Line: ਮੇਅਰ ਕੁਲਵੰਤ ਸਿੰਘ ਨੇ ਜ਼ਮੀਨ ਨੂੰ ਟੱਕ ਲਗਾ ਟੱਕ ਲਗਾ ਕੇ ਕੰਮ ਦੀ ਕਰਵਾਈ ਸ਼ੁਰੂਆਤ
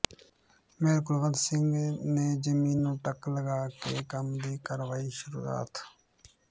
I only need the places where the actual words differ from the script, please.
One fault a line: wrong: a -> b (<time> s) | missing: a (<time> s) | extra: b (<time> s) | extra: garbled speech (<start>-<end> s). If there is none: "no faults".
missing: ਟੱਕ ਲਗਾ (3.7 s)